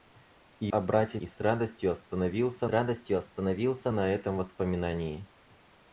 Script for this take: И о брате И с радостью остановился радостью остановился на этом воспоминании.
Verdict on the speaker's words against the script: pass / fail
pass